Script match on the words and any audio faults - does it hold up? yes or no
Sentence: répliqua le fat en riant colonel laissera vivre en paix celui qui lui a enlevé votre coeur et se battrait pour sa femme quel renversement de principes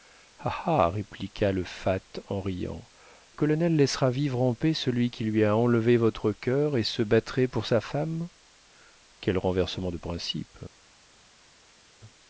yes